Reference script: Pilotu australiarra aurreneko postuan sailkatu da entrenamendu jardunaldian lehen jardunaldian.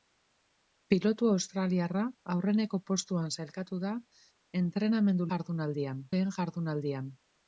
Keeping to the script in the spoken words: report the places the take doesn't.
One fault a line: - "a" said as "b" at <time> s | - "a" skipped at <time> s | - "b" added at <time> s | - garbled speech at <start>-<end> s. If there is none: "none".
none